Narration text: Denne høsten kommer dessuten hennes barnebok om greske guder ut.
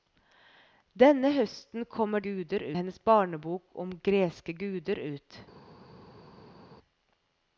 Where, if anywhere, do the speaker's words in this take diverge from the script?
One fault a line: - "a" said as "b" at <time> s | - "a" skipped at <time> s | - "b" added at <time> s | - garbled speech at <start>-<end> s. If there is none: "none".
- "dessuten" said as "guder" at 2.2 s